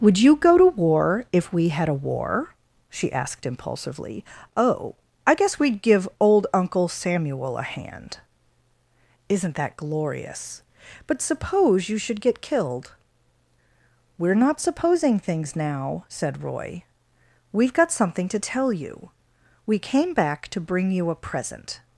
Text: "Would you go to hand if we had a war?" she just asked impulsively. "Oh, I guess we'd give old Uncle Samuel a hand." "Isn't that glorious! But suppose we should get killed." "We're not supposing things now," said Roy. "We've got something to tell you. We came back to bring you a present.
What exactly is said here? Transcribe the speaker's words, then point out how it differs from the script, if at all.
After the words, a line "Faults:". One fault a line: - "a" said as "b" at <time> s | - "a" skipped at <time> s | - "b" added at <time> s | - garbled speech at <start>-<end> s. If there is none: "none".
"Would you go to war if we had a war?" she asked impulsively. "Oh, I guess we'd give old Uncle Samuel a hand." "Isn't that glorious! But suppose you should get killed." "We're not supposing things now," said Roy. "We've got something to tell you. We came back to bring you a present.
Faults:
- "hand" said as "war" at 0.7 s
- "just" skipped at 3.1 s
- "we" said as "you" at 11.9 s